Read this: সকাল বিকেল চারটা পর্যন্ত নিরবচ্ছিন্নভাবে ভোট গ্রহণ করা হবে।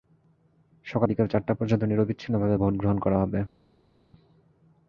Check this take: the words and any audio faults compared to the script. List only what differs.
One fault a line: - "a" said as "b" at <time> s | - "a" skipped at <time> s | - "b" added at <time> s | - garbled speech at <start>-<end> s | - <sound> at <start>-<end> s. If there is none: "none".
none